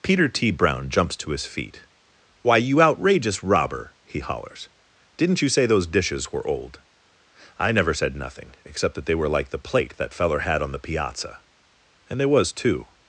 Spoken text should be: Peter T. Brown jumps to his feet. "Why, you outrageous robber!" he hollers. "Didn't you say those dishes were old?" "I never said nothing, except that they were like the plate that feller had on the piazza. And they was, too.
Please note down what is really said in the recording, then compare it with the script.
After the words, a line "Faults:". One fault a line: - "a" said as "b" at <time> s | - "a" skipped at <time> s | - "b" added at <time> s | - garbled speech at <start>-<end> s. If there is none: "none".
Peter T. Brown jumps to his feet. "Why, you outrageous robber!" he hollers. "Didn't you say those dishes were old?" "I never said nothing, except that they were like the plate that feller had on the piazza. And they was, too.
Faults:
none